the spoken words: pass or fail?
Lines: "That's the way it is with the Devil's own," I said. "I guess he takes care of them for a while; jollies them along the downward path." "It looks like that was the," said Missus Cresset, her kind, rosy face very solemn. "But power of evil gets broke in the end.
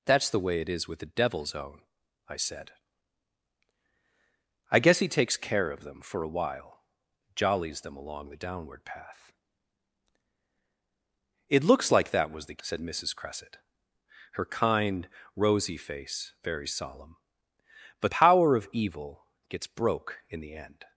pass